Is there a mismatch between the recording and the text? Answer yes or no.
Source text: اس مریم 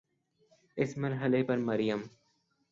yes